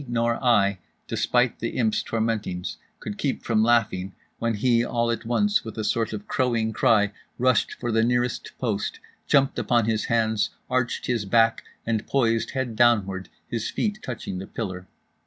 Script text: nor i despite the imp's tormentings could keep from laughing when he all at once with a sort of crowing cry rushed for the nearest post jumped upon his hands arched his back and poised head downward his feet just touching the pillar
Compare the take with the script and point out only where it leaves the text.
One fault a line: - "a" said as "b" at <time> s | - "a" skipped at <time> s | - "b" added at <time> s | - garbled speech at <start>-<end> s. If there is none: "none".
- "just" skipped at 14.0 s